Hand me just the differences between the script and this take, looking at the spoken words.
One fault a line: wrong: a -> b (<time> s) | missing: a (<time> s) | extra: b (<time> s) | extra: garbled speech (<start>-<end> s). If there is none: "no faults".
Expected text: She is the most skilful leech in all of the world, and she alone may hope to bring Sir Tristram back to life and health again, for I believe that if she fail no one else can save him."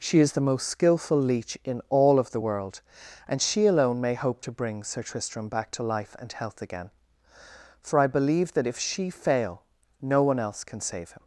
no faults